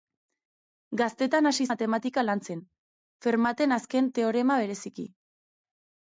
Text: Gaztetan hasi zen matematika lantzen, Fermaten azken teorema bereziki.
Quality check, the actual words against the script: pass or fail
fail